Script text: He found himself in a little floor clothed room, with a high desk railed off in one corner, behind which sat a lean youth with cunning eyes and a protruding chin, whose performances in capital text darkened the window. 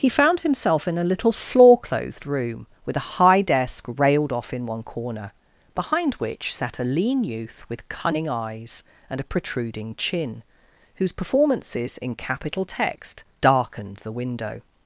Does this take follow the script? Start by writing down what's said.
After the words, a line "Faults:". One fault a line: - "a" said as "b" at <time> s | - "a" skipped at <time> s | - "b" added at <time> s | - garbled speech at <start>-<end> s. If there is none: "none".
He found himself in a little floor clothed room, with a high desk railed off in one corner, behind which sat a lean youth with cunning eyes and a protruding chin, whose performances in capital text darkened the window.
Faults:
none